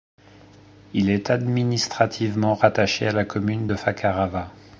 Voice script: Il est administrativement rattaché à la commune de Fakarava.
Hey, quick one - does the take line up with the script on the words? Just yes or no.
yes